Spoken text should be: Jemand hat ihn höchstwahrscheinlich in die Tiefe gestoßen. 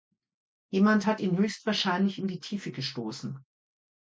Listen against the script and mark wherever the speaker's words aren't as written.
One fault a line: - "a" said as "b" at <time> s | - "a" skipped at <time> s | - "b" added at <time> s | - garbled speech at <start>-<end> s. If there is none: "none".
none